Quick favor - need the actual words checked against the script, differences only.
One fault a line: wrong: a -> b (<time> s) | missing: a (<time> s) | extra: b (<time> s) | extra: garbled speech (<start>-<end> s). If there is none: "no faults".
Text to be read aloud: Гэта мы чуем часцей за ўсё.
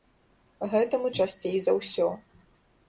missing: чуем (1.1 s)